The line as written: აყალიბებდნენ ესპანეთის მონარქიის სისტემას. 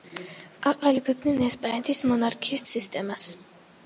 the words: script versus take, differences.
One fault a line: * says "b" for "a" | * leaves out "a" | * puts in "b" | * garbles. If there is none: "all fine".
all fine